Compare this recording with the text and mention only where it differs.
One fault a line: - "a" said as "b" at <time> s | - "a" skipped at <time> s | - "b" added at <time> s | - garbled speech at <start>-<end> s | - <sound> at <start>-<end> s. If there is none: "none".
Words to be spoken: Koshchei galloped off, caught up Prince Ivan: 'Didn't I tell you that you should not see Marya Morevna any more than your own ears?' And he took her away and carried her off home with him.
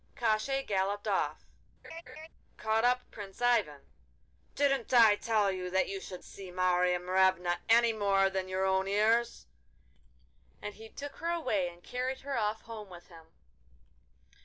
- laugh at 1.8-2.3 s
- "not" skipped at 6.2 s